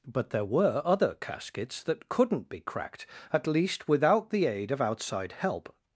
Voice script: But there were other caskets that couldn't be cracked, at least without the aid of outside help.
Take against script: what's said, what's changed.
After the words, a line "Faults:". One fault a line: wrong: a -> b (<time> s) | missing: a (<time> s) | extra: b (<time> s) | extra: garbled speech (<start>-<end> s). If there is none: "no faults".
But there were other caskets that couldn't be cracked, at least without the aid of outside help.
Faults:
no faults